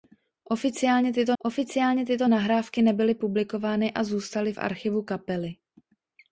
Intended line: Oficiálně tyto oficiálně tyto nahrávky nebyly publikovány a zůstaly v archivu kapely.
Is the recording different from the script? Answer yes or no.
no